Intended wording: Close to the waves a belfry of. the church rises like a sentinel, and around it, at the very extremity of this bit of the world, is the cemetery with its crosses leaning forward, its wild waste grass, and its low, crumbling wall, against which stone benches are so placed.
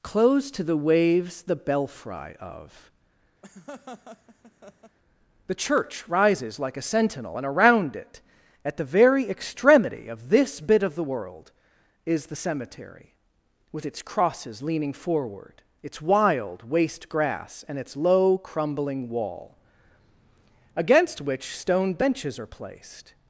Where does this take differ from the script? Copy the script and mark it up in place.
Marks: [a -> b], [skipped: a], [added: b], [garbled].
Close to the waves [a -> the] belfry of. the church rises like a sentinel, and around it, at the very extremity of this bit of the world, is the cemetery with its crosses leaning forward, its wild waste grass, and its low, crumbling wall, against which stone benches are [skipped: so] placed.